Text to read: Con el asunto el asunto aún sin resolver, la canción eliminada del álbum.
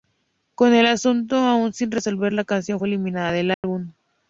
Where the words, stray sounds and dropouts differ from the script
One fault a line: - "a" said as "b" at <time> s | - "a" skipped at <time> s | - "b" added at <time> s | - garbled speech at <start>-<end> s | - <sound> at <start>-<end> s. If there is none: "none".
- "el asunto" skipped at 1.4 s
- "fue" added at 2.8 s
- dropout at 3.5-3.6 s